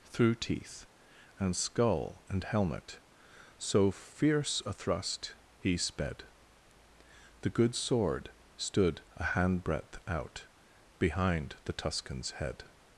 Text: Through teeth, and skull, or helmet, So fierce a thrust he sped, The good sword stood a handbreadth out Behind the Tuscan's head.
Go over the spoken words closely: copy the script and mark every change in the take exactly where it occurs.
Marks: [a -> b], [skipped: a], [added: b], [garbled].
Through teeth, and skull, [or -> and] helmet, So fierce a thrust he sped, The good sword stood a handbreadth out Behind the Tuscan's head.